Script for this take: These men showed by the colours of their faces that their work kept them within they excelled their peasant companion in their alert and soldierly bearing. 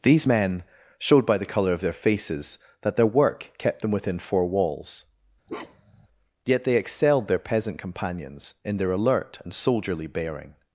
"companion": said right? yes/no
no